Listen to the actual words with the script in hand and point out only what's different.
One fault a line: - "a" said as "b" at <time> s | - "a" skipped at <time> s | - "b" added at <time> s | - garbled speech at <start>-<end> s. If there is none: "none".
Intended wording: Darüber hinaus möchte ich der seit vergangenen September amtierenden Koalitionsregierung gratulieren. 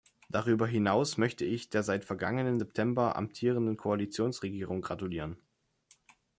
none